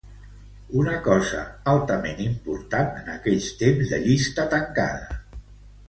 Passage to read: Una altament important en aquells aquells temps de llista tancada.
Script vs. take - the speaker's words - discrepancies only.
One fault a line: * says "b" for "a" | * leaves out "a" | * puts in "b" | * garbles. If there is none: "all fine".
* puts in "cosa"
* leaves out "aquells"